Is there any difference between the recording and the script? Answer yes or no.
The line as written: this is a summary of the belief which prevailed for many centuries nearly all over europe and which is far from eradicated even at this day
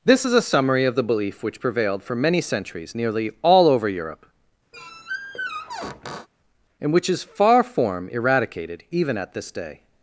yes